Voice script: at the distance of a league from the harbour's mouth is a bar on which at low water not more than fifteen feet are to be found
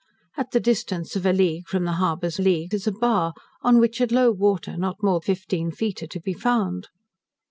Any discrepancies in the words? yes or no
yes